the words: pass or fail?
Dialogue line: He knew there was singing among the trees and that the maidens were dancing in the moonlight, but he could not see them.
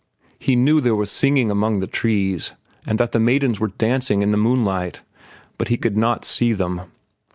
pass